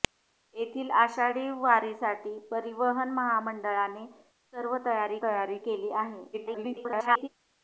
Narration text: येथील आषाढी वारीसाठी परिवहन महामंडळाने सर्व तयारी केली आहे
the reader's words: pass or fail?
fail